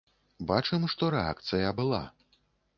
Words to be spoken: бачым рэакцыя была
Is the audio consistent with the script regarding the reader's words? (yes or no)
no